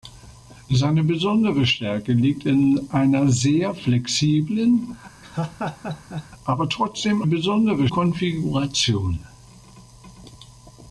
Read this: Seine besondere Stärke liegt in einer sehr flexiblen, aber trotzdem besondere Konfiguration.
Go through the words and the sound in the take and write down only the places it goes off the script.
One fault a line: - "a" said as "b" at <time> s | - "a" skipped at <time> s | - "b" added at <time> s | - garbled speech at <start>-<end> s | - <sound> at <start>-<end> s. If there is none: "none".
- laugh at 5.2-6.3 s